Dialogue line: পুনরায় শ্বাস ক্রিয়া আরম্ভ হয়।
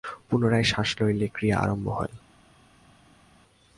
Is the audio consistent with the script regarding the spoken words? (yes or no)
no